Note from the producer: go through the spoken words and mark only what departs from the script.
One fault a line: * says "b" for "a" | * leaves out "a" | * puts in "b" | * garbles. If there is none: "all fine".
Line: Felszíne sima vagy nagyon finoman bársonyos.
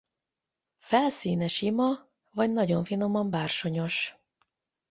all fine